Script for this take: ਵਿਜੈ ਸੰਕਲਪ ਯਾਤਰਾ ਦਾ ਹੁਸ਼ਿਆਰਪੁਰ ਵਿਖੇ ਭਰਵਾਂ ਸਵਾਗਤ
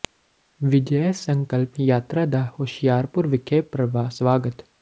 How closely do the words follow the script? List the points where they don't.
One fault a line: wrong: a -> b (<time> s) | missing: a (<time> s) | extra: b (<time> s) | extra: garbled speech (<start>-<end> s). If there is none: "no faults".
no faults